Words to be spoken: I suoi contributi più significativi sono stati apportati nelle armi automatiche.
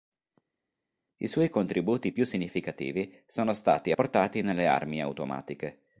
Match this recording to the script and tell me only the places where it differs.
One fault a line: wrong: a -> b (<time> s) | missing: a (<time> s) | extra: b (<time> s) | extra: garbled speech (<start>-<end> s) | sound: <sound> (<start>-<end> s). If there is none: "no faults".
no faults